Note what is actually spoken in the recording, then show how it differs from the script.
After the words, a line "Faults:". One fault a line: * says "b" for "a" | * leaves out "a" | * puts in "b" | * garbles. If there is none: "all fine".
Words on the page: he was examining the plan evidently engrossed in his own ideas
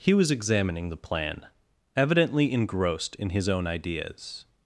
he was examining the plan evidently engrossed in his own ideas
Faults:
all fine